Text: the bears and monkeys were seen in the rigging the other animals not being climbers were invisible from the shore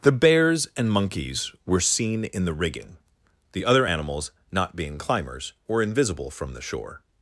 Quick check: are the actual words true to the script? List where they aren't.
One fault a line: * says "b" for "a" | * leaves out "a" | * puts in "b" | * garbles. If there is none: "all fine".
all fine